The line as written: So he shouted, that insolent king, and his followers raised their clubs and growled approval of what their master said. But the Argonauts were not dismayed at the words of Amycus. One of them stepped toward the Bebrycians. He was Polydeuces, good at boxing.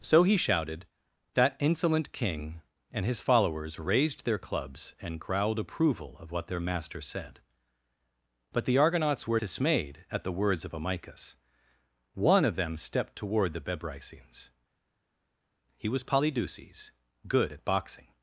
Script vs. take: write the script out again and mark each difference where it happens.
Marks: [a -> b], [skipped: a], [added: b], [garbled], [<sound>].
So he shouted, that insolent king, and his followers raised their clubs and growled approval of what their master said. But the Argonauts were [skipped: not] dismayed at the words of Amycus. One of them stepped toward the Bebrycians. He was Polydeuces, good at boxing.